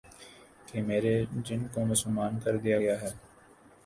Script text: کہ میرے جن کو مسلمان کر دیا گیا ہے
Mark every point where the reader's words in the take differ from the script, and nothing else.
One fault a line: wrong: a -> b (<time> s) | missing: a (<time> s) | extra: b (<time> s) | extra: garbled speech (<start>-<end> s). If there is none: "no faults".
no faults